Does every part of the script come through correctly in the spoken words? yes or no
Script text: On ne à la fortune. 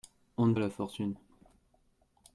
yes